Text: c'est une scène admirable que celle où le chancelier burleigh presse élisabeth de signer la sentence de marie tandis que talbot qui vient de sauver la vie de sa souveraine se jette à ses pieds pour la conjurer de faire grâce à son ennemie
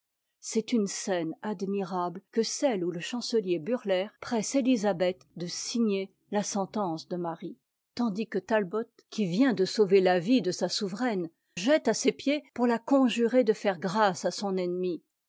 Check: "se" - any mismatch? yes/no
yes